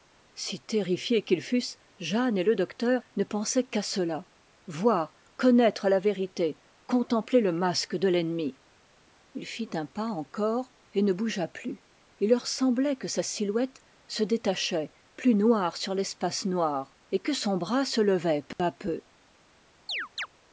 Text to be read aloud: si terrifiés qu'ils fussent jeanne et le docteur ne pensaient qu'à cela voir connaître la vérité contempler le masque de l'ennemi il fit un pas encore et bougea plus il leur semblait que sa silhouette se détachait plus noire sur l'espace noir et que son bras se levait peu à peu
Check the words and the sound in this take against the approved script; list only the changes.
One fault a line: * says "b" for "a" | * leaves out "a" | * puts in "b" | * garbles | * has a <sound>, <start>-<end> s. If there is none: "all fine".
* puts in "ne"
* has a dropout, 18.5-18.6 s
* has a chirp, 19.9-20.3 s